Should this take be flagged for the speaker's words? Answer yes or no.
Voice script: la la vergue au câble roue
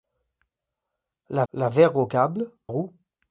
no